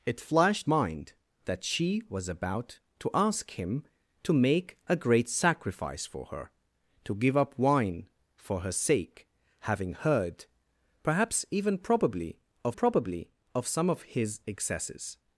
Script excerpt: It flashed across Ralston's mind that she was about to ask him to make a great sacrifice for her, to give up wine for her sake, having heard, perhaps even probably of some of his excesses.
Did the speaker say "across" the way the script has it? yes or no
no